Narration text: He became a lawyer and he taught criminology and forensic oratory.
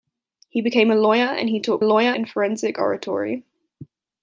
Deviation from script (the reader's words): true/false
true